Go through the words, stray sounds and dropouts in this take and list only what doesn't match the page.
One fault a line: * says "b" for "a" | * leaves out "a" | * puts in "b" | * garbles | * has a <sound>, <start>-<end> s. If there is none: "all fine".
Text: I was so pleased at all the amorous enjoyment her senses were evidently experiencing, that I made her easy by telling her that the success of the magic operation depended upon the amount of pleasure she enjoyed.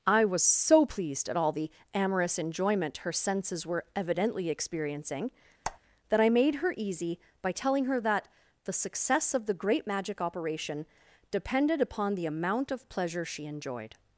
* has a squeak, 5.6-5.8 s
* puts in "great"